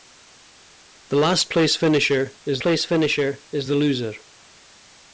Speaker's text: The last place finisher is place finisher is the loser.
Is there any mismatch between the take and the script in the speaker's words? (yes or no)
no